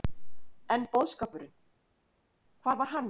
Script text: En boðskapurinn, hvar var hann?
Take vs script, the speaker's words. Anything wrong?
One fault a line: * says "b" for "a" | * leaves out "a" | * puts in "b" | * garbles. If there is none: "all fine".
all fine